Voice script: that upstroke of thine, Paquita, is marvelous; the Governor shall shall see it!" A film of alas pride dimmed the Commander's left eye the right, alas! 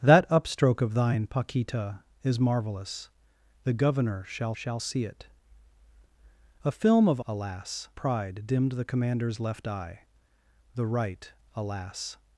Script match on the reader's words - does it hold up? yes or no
yes